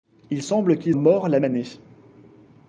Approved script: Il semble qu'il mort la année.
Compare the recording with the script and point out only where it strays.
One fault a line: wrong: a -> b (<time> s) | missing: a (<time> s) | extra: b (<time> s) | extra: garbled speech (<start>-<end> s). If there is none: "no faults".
no faults